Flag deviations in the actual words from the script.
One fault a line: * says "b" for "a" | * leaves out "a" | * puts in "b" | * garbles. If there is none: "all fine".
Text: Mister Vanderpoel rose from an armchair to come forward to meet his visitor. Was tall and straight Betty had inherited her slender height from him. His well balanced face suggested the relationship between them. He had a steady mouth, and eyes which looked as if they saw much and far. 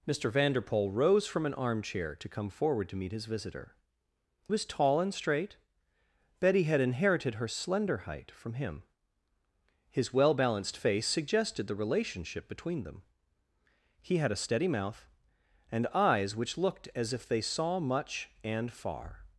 all fine